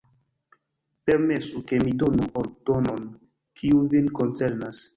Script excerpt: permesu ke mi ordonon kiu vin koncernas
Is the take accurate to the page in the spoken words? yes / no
no